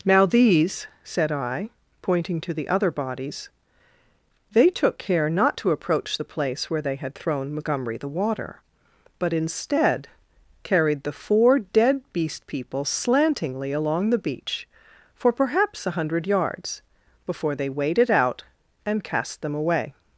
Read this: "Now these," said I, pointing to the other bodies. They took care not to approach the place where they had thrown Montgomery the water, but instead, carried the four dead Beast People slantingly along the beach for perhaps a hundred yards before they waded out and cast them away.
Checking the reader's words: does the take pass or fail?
pass